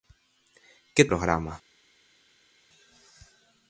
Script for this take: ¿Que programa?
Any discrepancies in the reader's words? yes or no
no